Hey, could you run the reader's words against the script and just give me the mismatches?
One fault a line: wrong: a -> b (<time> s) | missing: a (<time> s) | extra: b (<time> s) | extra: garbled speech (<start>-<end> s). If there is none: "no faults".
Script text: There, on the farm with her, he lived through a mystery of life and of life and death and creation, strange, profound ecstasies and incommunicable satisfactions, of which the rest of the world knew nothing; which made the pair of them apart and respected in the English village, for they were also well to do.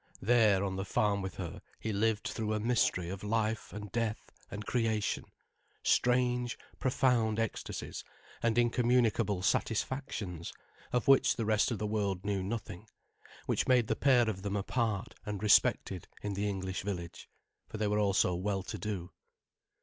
missing: of life and (3.9 s)